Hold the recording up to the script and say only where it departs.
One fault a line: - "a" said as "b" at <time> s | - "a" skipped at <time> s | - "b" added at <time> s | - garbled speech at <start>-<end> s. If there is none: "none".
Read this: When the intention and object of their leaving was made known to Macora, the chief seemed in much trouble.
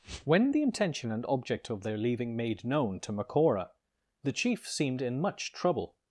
- "was" skipped at 2.4 s